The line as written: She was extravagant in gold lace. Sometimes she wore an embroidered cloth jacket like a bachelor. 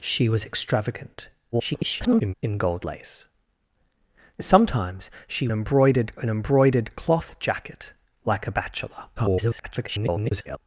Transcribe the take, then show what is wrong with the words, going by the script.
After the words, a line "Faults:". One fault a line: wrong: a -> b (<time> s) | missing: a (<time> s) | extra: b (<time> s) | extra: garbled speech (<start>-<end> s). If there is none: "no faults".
She was extravagant [garbled] in gold lace. Sometimes she embroidered an embroidered cloth jacket like a bachelor. [garbled]
Faults:
extra: garbled speech (1.5-2.3 s)
wrong: wore -> embroidered (5.5 s)
extra: garbled speech (9.2-10.6 s)